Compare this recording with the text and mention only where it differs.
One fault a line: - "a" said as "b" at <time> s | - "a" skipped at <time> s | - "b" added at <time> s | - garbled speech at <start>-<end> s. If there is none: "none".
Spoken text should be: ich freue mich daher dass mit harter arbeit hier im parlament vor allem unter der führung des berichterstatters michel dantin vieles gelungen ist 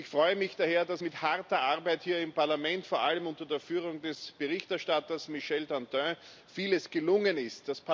none